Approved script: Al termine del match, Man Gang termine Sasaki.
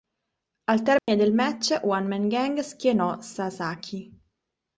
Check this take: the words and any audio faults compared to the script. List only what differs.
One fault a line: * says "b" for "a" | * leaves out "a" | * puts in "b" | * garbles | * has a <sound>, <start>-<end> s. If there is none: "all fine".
* has a dropout, 1.0-1.1 s
* puts in "One"
* says "schienò" for "termine"